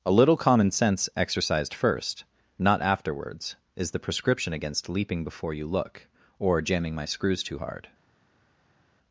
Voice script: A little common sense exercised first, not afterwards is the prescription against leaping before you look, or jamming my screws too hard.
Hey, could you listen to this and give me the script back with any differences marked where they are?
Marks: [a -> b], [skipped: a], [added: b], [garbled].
A little common sense exercised first, not afterwards is the prescription against leaping before you look, or jamming my screws too hard.